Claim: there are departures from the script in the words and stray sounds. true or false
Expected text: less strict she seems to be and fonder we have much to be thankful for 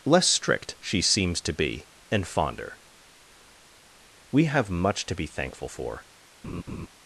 true